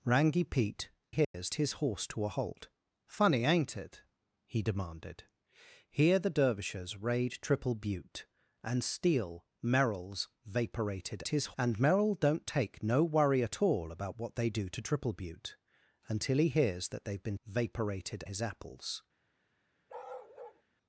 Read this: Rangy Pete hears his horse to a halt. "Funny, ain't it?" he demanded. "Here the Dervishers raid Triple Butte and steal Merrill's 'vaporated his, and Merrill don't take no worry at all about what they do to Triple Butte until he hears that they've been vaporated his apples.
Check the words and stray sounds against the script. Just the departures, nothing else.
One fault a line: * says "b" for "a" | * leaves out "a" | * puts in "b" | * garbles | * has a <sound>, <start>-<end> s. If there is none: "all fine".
* has a dropout, 1.2-1.3 s
* has a bark, 19.9-20.6 s